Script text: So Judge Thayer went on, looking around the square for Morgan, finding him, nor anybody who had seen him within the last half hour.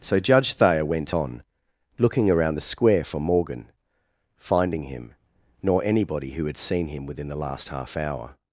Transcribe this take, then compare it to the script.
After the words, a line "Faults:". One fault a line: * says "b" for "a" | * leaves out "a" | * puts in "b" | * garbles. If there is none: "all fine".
So Judge Thayer went on, looking around the square for Morgan, finding him, nor anybody who had seen him within the last half hour.
Faults:
all fine